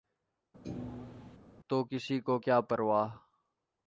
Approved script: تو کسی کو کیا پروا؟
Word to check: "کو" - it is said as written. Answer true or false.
true